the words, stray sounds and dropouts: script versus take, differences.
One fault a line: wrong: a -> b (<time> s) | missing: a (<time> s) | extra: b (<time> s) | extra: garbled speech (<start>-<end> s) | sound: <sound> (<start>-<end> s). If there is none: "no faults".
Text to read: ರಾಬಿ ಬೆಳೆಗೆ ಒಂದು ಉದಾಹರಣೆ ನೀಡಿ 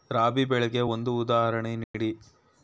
sound: dropout (1.8-1.9 s)